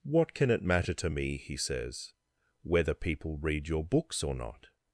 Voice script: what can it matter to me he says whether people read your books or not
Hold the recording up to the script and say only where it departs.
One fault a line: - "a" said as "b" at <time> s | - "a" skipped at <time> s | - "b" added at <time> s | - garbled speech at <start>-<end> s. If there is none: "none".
none